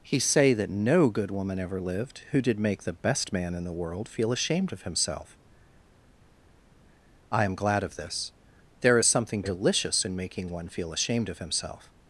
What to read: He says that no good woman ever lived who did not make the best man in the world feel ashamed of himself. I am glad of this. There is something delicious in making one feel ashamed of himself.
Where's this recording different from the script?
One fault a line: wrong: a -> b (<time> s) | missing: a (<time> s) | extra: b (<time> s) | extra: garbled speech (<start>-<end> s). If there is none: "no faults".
wrong: says -> say (0.2 s)
missing: not (2.6 s)